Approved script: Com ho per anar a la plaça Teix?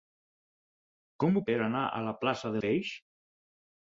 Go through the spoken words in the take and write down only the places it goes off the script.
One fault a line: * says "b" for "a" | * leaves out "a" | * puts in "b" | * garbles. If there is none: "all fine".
all fine